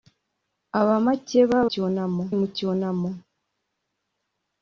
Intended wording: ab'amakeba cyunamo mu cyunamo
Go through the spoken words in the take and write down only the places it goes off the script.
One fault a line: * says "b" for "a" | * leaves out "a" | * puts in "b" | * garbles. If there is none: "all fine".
all fine